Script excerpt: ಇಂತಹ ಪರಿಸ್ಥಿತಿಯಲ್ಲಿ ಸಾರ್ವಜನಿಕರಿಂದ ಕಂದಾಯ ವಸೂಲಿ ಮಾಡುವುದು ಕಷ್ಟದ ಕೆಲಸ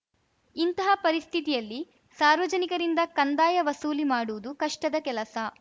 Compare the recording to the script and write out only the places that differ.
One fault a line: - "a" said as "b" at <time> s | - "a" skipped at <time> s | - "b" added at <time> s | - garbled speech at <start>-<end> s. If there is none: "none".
none